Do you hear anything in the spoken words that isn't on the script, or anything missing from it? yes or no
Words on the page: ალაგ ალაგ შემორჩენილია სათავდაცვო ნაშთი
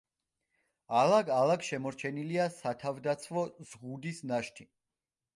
yes